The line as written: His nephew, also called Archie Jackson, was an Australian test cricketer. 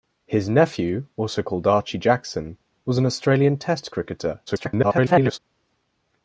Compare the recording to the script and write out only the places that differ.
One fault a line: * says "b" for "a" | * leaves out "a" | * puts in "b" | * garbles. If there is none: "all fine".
* garbles